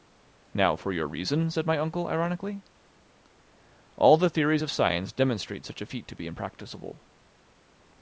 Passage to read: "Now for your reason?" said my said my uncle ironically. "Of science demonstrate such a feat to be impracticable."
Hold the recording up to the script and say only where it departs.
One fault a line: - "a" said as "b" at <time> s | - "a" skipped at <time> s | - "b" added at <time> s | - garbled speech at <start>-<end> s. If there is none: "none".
- "said my uncle ironically" said as "uncle ironically All the theories" at 1.8 s